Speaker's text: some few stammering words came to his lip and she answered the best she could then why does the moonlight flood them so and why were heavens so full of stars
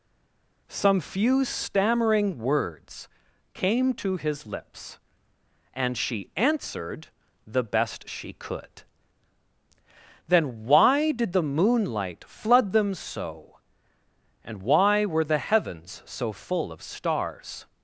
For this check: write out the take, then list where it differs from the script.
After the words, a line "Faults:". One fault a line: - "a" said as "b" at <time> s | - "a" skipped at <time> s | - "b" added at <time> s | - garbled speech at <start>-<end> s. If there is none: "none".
some few stammering words came to his lips and she answered the best she could then why did the moonlight flood them so and why were the heavens so full of stars
Faults:
- "lip" said as "lips" at 4.5 s
- "does" said as "did" at 11.1 s
- "the" added at 15.2 s